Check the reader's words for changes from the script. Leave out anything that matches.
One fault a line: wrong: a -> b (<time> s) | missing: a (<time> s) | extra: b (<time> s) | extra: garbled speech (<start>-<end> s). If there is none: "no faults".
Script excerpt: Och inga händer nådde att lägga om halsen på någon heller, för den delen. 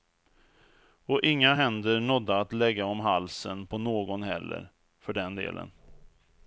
no faults